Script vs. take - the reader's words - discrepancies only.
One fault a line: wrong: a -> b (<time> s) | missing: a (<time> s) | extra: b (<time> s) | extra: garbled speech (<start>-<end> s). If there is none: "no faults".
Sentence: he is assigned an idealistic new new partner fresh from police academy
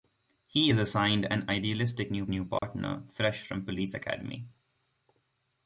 no faults